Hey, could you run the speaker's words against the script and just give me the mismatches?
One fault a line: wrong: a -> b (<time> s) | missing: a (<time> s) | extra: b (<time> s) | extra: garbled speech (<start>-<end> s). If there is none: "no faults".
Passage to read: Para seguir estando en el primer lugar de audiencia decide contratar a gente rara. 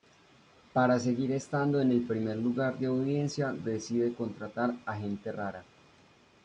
no faults